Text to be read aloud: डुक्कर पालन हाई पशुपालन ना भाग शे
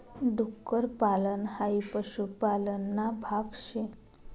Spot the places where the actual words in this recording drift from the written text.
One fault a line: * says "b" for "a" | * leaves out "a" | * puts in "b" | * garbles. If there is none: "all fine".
all fine